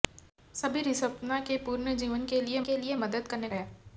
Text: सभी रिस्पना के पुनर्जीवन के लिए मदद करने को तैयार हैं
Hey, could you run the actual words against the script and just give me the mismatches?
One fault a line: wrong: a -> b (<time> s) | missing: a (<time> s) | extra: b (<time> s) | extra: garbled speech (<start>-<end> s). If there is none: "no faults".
extra: के लिए (2.6 s)
missing: को तैयार (3.5 s)